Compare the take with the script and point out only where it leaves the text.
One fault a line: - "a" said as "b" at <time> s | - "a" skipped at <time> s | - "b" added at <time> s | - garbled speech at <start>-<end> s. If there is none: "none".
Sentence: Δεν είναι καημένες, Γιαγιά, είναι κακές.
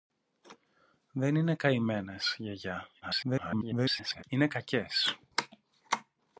- garbled speech at 3.0-4.2 s